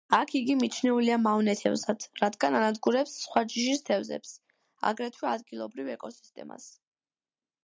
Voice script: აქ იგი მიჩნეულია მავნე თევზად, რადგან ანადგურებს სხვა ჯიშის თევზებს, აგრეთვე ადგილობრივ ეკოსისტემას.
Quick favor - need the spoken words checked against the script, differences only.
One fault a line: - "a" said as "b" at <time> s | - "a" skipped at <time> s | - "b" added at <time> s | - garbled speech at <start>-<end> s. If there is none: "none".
none